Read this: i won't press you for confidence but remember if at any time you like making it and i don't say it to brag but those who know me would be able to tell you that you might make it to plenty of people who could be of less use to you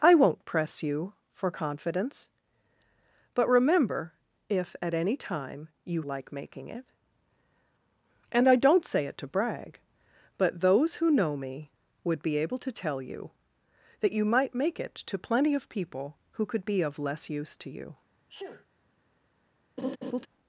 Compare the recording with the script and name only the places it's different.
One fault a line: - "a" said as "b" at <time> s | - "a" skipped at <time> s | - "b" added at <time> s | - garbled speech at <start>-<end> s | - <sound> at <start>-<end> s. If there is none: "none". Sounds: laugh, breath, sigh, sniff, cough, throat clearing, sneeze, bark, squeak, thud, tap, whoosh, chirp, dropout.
- sneeze at 18.3-18.7 s
- laugh at 19.8-20.3 s